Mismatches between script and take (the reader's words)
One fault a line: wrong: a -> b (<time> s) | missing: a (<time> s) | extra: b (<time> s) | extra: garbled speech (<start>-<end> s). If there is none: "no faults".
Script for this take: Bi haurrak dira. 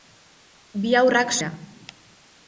no faults